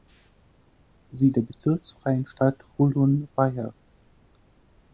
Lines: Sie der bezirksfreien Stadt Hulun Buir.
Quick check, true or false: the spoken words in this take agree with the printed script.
true